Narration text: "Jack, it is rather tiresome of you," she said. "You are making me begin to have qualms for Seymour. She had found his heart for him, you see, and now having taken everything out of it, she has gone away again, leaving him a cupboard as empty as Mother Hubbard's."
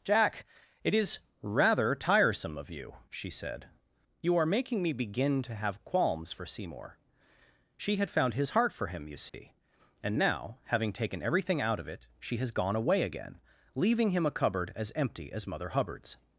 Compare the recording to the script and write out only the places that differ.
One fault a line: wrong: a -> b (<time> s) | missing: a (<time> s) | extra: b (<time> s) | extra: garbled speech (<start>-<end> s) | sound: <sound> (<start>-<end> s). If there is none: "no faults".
sound: dropout (9.3-9.3 s)